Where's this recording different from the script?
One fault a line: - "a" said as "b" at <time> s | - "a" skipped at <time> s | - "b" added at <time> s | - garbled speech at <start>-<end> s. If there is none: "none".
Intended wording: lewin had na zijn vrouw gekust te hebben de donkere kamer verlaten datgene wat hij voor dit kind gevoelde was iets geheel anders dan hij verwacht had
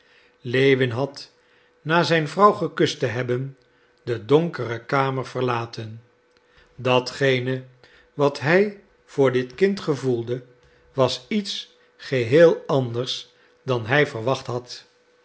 none